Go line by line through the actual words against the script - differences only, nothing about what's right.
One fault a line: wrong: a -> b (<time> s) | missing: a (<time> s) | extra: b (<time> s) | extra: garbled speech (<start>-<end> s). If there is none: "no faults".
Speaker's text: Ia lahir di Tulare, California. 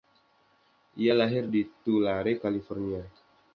no faults